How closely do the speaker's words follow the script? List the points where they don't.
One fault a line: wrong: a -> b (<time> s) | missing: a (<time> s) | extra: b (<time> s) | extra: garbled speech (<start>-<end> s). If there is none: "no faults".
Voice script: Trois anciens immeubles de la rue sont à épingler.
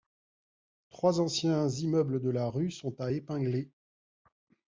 no faults